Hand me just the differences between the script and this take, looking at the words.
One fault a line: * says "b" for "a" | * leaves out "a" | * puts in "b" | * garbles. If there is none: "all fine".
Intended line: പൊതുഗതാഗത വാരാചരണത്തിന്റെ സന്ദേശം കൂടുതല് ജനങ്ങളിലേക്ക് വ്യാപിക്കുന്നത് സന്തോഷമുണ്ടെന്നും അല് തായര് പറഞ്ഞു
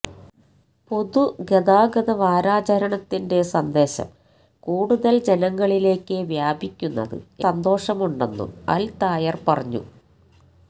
all fine